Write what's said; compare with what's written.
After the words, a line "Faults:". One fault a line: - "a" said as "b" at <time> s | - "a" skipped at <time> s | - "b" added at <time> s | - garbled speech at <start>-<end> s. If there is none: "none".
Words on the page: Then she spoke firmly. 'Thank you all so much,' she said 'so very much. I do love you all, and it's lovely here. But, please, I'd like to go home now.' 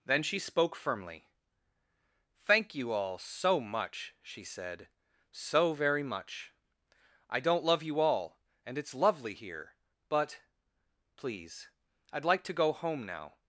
Then she spoke firmly. 'Thank you all so much,' she said 'so very much. I don't love you all, and it's lovely here. But, please, I'd like to go home now.'
Faults:
- "do" said as "don't" at 7.4 s